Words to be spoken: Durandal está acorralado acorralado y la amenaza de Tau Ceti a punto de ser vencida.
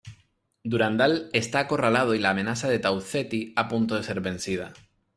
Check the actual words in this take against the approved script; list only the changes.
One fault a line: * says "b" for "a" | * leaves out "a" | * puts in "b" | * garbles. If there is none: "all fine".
* leaves out "acorralado"